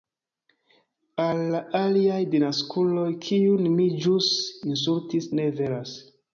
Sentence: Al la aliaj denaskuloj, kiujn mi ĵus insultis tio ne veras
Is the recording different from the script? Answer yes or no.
yes